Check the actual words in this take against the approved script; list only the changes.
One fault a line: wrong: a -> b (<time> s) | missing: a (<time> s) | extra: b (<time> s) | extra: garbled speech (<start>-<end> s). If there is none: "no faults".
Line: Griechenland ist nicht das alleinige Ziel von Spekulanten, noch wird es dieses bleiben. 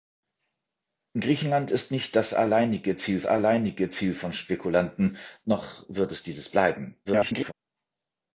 extra: alleinige Ziel (3.3 s)
extra: garbled speech (7.0-7.5 s)